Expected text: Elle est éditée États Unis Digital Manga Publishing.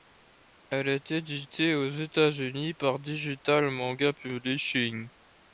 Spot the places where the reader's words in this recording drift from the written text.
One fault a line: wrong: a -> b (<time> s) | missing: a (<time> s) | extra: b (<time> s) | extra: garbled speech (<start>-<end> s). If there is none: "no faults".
extra: aux (1.8 s)
extra: par (2.7 s)